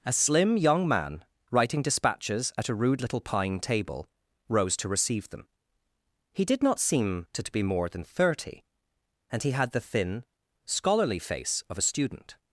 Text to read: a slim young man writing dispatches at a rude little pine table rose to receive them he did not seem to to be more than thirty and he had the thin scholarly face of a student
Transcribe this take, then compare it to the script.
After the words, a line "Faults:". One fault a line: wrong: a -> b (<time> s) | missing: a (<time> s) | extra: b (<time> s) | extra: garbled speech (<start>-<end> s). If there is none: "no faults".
a slim young man writing dispatches at a rude little pine table rose to receive them he did not seem to to be more than thirty and he had the thin scholarly face of a student
Faults:
no faults